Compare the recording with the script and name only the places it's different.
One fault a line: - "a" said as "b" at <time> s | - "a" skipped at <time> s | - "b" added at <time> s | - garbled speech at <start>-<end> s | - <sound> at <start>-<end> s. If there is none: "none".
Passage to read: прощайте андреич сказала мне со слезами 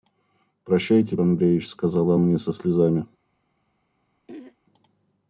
- throat clearing at 4.3-4.6 s